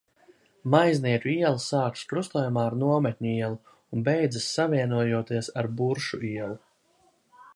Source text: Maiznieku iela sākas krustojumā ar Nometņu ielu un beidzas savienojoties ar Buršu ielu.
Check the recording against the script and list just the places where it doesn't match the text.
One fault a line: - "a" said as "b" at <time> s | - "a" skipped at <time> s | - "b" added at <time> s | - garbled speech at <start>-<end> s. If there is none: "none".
none